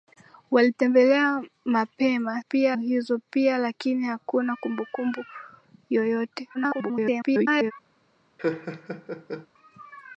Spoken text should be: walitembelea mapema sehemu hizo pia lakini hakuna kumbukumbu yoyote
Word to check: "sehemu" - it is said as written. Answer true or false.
false